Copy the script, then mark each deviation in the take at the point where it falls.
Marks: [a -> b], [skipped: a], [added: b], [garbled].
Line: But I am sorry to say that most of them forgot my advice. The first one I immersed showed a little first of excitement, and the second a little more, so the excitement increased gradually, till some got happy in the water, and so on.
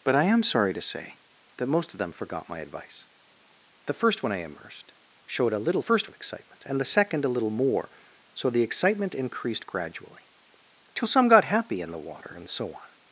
But I am sorry to say that most of them forgot my advice. The first one I immersed showed a little first of excitement, and the second a little more, so the excitement increased gradually, till some got happy in the water, and so on.